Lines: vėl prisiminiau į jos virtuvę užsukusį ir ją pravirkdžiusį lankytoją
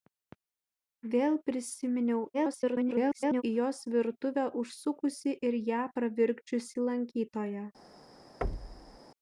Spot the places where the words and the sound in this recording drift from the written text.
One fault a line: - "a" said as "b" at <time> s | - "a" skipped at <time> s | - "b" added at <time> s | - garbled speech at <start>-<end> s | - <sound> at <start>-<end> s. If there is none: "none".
- garbled speech at 2.3-3.4 s
- thud at 8.4-9.0 s